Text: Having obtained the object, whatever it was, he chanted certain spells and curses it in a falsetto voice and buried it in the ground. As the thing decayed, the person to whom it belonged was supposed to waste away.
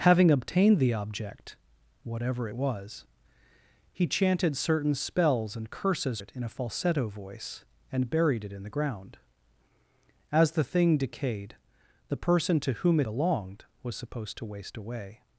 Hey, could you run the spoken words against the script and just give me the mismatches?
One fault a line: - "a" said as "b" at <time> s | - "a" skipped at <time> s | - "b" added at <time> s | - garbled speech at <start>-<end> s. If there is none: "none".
none